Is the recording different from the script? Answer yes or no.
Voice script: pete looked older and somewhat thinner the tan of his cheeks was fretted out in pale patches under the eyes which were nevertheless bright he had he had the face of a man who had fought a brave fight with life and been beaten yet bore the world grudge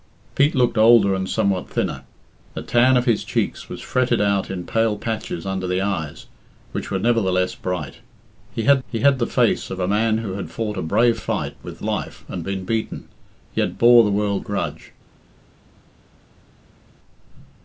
no